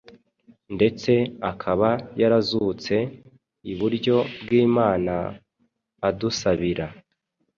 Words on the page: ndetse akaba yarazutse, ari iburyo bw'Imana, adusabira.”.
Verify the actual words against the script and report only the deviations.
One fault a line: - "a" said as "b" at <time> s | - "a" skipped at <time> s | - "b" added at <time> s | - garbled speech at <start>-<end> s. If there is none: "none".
- "ari" skipped at 3.0 s